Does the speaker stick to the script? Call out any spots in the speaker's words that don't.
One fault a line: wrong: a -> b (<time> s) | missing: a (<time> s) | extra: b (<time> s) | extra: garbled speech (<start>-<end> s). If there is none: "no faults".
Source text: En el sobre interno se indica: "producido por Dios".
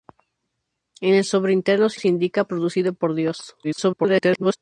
extra: se (1.9 s)
extra: garbled speech (3.6-4.6 s)